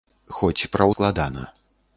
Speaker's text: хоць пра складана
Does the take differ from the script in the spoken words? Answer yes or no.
no